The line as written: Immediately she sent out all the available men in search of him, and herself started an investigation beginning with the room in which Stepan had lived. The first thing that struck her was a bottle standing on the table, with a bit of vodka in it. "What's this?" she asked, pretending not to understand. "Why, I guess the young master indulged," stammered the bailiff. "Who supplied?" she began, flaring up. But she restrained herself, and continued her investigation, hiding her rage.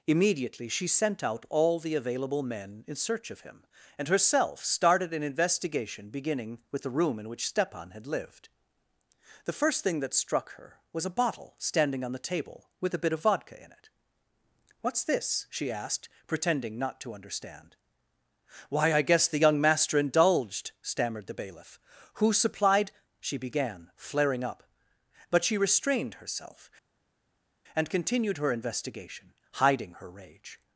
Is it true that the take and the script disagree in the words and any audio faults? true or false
false